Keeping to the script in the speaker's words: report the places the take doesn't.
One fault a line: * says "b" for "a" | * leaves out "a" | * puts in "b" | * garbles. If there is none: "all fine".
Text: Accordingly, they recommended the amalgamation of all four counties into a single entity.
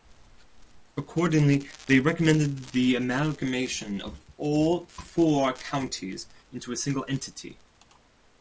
all fine